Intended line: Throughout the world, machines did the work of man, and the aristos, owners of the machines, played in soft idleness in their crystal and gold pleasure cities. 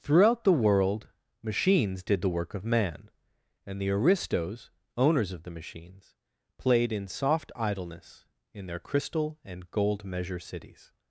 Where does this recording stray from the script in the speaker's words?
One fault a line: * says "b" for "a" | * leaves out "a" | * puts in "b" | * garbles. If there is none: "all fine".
* says "measure" for "pleasure"